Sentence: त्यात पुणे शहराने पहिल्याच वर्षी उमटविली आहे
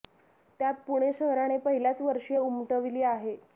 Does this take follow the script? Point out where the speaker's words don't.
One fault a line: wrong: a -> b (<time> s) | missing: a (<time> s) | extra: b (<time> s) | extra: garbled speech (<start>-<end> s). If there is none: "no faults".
no faults